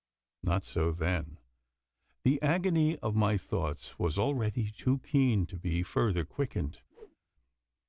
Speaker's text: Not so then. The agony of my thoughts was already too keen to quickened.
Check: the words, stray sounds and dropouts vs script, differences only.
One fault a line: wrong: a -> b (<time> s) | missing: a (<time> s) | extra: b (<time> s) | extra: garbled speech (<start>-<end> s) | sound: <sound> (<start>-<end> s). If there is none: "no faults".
extra: be further (5.6 s)
sound: whoosh (6.9-7.2 s)